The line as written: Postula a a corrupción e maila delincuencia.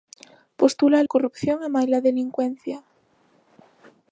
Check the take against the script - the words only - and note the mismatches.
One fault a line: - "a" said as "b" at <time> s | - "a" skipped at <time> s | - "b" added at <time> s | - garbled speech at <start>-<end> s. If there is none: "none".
none